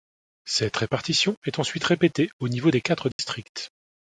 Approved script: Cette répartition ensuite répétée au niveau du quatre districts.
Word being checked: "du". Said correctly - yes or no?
no